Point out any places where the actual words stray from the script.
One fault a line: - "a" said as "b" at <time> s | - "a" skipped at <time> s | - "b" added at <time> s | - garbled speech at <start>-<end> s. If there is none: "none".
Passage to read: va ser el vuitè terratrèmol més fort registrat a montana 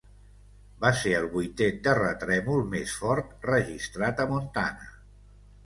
none